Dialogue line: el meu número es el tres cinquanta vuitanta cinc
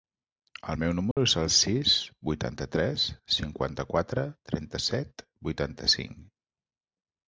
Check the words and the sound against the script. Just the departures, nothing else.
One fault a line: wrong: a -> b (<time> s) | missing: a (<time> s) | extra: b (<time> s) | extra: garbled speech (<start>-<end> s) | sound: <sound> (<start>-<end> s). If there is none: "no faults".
sound: dropout (1.1-1.2 s)
extra: sis vuitanta (1.5 s)
extra: quatre trenta set (3.9 s)